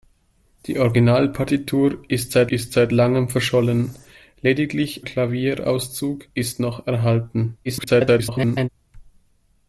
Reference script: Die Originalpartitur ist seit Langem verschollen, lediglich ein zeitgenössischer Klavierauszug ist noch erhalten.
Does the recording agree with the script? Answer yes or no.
no